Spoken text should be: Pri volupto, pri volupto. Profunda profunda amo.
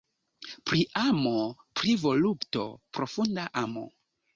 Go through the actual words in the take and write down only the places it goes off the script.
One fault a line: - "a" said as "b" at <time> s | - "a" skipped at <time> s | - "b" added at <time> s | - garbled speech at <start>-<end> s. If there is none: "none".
- "volupto" said as "amo" at 1.0 s
- "profunda" skipped at 3.5 s